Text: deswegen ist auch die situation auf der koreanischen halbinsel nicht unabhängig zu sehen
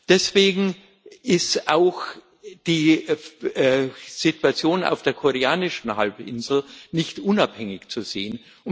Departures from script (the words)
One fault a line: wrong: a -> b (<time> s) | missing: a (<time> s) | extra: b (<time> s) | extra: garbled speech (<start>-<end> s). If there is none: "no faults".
no faults